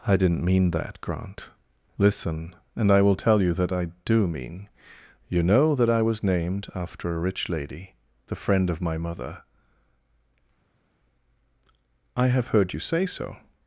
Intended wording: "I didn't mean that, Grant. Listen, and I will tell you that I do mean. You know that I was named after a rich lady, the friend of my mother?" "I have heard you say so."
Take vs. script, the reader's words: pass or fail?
pass